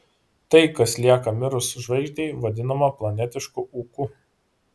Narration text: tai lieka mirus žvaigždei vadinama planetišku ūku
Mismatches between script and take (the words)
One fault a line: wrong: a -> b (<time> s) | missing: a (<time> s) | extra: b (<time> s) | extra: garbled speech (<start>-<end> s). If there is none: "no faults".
extra: kas (0.8 s)